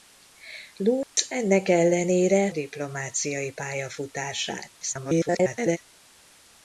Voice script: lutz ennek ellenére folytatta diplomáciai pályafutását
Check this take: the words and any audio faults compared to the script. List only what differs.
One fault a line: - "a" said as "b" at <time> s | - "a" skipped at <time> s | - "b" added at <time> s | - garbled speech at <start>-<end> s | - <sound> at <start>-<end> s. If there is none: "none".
- dropout at 1.0-1.2 s
- "folytatta" skipped at 2.5 s
- garbled speech at 4.8-5.8 s